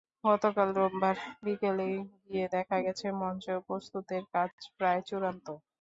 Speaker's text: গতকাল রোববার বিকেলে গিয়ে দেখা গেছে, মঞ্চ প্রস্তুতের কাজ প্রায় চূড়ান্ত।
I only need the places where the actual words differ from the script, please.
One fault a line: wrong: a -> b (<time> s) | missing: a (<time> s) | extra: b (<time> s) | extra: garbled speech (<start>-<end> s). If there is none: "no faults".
no faults